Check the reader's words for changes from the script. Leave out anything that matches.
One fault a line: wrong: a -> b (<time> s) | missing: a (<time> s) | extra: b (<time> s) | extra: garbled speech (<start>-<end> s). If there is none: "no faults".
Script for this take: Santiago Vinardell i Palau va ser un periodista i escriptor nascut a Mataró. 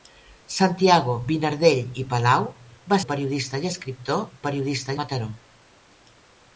missing: ser (3.0 s)
wrong: nascut -> periodista (4.5 s)